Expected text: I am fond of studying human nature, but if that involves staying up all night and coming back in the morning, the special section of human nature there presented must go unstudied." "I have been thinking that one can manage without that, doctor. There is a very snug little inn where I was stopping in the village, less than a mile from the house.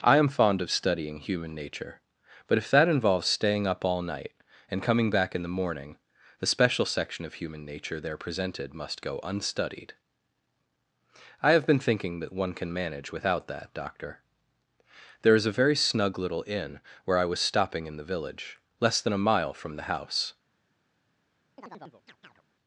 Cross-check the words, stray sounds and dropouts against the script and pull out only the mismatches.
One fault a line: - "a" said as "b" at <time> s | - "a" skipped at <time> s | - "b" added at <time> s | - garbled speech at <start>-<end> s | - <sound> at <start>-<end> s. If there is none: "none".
- chirp at 21.6-22.4 s